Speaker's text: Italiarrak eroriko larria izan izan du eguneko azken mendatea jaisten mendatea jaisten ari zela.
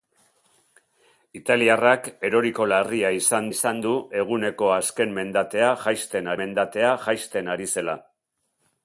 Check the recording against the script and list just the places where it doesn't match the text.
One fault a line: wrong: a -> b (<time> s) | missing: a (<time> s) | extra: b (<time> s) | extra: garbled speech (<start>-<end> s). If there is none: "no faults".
no faults